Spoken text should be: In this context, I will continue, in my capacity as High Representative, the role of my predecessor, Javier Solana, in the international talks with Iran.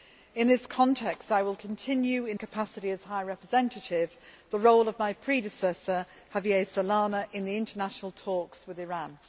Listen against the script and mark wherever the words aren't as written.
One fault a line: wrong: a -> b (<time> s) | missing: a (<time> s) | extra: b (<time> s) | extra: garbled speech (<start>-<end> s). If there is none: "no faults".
missing: my (2.4 s)